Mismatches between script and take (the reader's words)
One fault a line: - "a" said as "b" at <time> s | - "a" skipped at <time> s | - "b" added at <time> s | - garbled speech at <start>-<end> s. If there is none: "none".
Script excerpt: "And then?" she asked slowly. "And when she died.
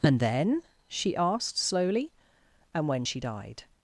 none